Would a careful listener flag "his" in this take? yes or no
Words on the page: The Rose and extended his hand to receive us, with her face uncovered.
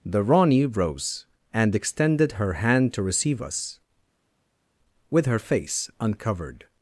yes